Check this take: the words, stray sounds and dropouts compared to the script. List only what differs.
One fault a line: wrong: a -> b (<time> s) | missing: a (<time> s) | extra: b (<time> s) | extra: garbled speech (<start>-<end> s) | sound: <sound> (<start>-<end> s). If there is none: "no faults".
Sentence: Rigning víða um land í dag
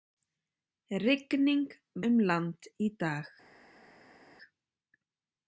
missing: víða (1.6 s)